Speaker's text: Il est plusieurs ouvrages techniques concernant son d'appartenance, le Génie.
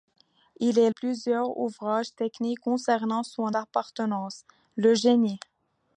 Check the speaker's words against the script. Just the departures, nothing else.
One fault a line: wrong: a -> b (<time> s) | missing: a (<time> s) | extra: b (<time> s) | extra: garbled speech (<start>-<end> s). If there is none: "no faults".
no faults